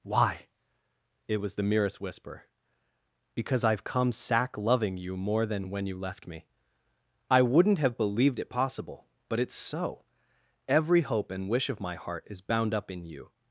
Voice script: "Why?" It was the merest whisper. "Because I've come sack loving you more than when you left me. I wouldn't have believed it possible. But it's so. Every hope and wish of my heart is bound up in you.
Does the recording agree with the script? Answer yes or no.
yes